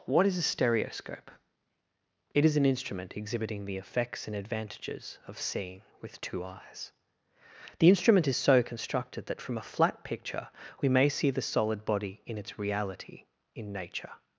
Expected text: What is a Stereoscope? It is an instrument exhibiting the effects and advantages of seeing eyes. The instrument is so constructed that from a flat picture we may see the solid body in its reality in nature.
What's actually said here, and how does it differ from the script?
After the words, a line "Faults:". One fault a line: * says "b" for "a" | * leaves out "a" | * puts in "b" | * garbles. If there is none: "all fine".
What is a Stereoscope? It is an instrument exhibiting the effects and advantages of seeing with two eyes. The instrument is so constructed that from a flat picture we may see the solid body in its reality in nature.
Faults:
* puts in "with two"